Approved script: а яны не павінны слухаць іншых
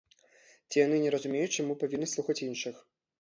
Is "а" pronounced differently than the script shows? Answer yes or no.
yes